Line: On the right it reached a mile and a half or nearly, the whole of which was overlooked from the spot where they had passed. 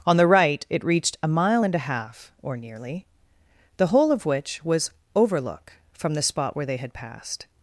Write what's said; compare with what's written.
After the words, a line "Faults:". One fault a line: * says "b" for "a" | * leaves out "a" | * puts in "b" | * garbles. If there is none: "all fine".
On the right it reached a mile and a half or nearly, the whole of which was overlook from the spot where they had passed.
Faults:
* says "overlook" for "overlooked"